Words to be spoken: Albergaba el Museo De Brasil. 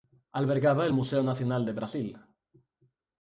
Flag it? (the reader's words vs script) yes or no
yes